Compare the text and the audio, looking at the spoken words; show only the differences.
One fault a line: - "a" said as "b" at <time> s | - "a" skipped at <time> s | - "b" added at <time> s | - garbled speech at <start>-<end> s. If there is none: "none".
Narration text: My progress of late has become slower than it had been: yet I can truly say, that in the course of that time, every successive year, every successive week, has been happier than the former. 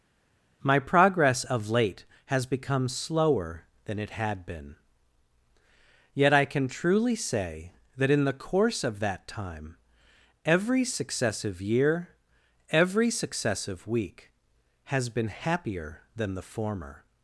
none